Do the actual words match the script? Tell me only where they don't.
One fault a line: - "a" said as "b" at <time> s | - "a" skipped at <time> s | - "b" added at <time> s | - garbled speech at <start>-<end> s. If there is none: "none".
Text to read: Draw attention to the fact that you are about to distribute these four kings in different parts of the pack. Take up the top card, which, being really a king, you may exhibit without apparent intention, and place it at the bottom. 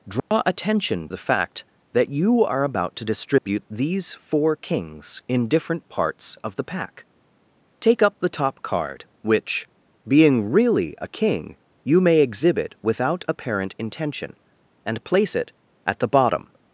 - "to" skipped at 1.1 s